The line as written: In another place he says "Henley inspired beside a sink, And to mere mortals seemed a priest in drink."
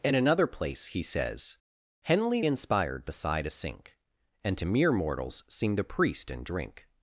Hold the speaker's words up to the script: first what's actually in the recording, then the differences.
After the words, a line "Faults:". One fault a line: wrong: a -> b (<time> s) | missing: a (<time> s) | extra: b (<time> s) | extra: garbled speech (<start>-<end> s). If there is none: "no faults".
In another place he says "Henley inspired beside a sink, And to mere mortals seemed a priest in drink."
Faults:
no faults